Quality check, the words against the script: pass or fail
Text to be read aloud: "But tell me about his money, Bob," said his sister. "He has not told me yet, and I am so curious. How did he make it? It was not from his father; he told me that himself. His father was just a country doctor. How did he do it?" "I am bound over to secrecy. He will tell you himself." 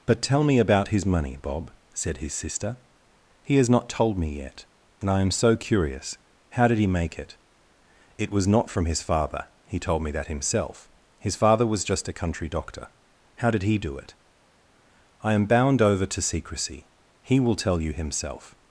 pass